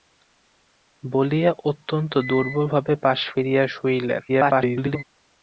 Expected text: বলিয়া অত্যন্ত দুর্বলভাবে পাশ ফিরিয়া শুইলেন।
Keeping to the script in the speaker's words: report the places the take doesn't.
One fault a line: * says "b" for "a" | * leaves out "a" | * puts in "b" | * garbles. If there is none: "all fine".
* garbles